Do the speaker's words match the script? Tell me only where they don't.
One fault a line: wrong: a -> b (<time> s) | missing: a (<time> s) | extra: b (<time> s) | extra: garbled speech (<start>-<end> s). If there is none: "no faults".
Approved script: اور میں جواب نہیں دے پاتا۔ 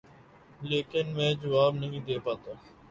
wrong: اور -> لیکن (0.6 s)